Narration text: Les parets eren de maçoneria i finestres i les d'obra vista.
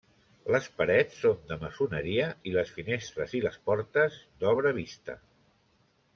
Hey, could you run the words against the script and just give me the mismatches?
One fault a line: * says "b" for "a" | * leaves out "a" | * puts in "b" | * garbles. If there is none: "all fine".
* says "són" for "eren"
* puts in "les"
* puts in "portes"